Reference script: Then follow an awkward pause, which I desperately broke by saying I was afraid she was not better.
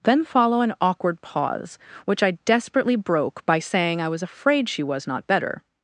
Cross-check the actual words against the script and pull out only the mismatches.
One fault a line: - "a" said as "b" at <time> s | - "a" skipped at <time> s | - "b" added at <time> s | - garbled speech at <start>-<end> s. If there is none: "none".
none